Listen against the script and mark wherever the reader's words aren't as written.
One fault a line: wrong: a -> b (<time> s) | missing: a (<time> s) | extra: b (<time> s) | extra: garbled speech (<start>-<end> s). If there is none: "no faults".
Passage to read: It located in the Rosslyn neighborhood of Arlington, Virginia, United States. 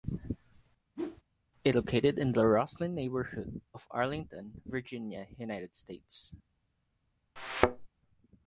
no faults